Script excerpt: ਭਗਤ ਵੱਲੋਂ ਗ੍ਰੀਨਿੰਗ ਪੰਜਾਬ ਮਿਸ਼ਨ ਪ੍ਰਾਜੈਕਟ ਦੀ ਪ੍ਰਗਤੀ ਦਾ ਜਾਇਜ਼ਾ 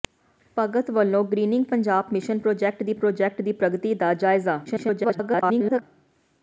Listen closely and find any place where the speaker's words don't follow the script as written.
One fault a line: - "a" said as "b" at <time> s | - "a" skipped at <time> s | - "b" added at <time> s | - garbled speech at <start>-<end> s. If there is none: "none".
- "ਪ੍ਰਾਜੈਕਟ ਦੀ" added at 2.9 s
- garbled speech at 4.6-5.8 s